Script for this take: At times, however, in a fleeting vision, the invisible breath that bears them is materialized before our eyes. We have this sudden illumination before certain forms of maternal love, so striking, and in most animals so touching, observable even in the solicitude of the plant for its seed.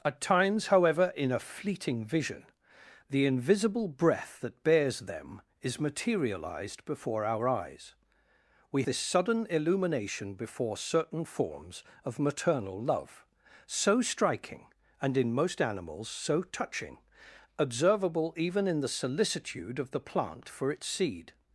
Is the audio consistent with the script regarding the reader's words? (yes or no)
no